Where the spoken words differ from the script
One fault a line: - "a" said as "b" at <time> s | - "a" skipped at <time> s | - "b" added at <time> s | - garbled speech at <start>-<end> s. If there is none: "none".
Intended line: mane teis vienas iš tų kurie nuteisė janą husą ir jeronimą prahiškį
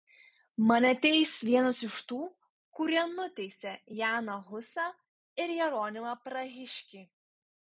none